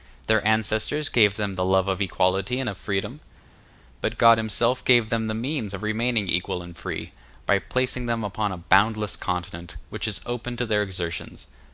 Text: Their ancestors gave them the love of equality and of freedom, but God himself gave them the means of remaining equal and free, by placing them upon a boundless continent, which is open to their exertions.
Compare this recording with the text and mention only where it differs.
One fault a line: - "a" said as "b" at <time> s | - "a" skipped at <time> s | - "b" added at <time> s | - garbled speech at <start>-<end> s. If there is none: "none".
none